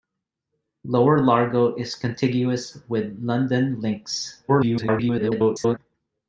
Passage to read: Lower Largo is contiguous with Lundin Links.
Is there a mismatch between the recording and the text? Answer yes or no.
yes